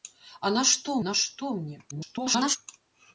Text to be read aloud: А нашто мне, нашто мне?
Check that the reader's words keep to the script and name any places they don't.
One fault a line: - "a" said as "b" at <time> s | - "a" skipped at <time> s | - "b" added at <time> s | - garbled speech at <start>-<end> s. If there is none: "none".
- "мне" skipped at 1.0 s
- garbled speech at 1.9-2.6 s